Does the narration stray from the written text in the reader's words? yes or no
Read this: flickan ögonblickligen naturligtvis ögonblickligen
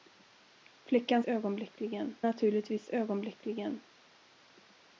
no